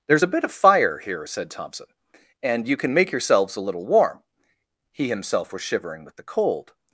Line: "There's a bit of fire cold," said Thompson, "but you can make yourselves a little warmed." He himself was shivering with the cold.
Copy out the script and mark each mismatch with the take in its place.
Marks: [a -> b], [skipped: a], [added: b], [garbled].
"There's a bit of fire [cold," -> here] said Thompson, ["but -> and] you can make yourselves a little [warmed." -> warm] He himself was shivering with the cold.